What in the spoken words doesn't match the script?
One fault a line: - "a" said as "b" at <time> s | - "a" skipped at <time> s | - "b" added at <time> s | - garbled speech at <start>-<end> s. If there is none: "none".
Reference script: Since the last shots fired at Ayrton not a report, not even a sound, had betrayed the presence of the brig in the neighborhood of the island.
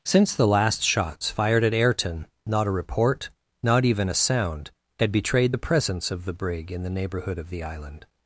none